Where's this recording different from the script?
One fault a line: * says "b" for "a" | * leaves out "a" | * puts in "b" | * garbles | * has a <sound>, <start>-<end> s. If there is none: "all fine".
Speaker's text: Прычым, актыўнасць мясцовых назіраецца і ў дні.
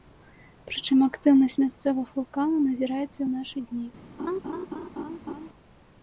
* puts in "вулканаў"
* puts in "нашы"
* has a laugh, 4.2-5.5 s